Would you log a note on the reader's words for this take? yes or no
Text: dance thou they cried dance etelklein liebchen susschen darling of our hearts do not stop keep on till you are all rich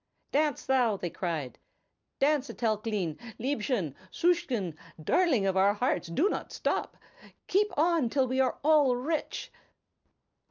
yes